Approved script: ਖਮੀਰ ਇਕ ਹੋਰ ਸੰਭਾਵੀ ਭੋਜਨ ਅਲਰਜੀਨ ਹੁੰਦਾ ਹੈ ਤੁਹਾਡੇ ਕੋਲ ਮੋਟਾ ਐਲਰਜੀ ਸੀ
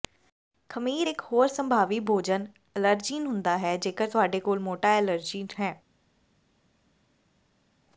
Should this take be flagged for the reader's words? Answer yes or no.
yes